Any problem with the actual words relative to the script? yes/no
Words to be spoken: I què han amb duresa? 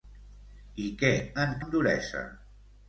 no